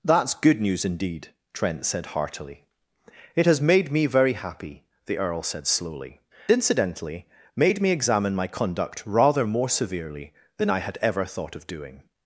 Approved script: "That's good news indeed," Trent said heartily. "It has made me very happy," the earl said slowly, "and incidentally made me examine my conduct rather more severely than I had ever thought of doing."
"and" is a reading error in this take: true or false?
true